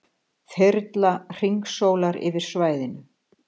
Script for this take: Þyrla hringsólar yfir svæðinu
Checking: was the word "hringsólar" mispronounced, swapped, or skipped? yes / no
no